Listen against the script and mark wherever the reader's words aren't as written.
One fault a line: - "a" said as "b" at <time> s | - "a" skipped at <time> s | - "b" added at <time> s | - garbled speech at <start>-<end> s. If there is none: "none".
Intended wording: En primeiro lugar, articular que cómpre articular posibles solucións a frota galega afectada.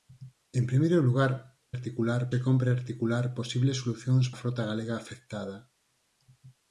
none